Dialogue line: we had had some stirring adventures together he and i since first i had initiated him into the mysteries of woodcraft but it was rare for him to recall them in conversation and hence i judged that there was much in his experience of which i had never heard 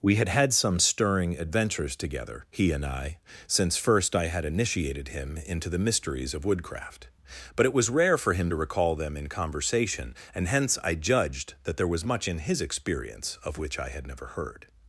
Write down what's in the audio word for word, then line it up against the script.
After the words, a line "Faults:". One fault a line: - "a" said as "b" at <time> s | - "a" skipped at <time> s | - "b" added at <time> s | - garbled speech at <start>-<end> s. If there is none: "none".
we had had some stirring adventures together he and i since first i had initiated him into the mysteries of woodcraft but it was rare for him to recall them in conversation and hence i judged that there was much in his experience of which i had never heard
Faults:
none